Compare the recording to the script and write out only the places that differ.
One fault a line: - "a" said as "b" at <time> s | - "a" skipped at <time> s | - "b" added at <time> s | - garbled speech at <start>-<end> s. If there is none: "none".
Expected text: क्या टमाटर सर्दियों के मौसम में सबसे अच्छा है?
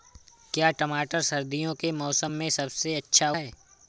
none